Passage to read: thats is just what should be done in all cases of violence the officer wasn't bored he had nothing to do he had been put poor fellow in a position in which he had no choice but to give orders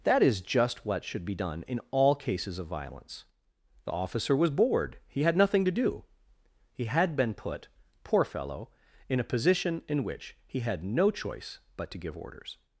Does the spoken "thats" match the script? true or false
false